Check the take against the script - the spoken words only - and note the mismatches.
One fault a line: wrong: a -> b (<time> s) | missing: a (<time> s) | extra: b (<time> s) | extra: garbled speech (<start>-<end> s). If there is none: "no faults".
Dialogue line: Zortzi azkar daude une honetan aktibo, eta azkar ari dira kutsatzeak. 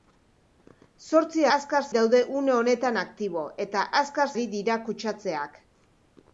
no faults